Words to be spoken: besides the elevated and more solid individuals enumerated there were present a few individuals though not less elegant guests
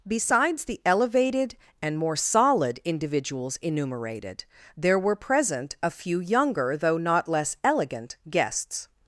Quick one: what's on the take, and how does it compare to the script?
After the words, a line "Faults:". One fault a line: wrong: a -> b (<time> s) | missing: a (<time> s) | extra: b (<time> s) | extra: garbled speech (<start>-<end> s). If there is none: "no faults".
besides the elevated and more solid individuals enumerated there were present a few younger though not less elegant guests
Faults:
wrong: individuals -> younger (6.2 s)